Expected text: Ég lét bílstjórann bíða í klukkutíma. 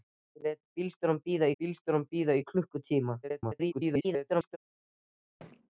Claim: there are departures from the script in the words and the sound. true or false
true